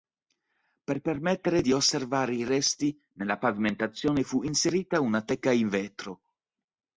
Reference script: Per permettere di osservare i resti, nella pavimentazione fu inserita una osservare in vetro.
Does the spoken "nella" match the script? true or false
true